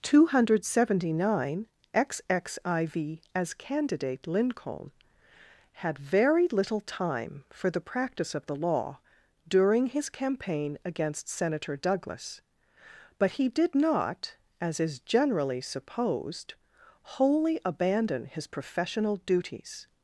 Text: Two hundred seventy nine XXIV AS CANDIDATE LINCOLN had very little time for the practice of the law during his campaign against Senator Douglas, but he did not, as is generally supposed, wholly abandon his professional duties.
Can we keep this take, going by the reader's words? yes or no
yes